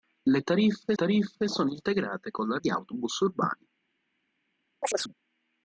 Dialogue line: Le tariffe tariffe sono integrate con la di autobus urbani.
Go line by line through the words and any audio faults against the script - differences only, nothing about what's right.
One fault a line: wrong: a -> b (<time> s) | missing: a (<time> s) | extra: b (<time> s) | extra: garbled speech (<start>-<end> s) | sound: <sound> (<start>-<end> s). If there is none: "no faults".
sound: chirp (4.8-5.1 s)